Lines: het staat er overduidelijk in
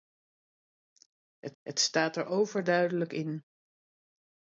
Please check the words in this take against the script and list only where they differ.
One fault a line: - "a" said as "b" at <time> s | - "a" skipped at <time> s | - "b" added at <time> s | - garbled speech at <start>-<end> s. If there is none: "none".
- "het" added at 1.6 s